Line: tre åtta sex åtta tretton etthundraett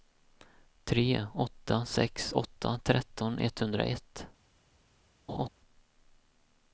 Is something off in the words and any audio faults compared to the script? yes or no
yes